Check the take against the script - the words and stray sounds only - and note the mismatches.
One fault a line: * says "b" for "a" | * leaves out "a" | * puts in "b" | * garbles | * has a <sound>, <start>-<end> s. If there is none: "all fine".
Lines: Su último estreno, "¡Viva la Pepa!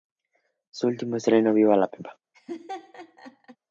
* has a laugh, 2.3-3.6 s